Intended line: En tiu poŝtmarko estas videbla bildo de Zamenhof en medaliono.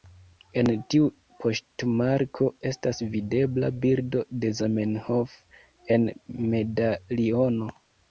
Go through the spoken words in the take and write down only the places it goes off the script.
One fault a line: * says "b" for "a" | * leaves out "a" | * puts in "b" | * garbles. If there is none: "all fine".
all fine